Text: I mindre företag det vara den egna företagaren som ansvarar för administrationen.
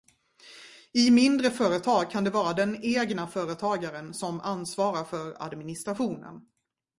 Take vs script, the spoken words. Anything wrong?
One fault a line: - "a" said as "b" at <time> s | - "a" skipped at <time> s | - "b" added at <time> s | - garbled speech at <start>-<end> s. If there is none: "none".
- "kan" added at 2.1 s